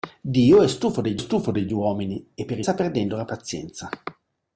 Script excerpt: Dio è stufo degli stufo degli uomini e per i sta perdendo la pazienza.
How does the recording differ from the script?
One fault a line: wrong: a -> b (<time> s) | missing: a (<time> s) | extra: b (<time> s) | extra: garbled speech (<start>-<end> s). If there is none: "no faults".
no faults